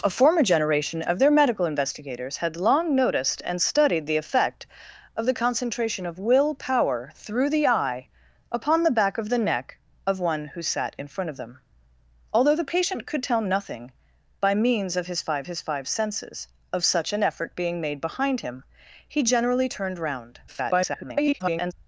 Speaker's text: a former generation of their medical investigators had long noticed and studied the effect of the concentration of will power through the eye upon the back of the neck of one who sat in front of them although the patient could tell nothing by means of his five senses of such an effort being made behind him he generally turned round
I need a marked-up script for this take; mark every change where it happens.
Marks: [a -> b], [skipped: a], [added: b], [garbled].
a former generation of their medical investigators had long noticed and studied the effect of the concentration of will power through the eye upon the back of the neck of one who sat in front of them although the patient could tell nothing by means of his five [added: his five] senses of such an effort being made behind him he generally turned round [garbled]